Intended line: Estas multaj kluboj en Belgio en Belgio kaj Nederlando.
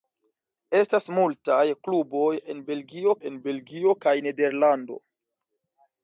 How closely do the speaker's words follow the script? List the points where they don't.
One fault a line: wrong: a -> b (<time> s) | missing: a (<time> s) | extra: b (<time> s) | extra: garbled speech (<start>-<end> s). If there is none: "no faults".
no faults